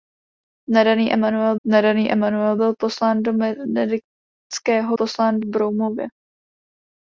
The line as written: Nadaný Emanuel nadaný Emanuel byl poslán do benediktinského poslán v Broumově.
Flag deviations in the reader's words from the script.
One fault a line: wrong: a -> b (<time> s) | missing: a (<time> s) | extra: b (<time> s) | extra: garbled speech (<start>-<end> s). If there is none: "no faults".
no faults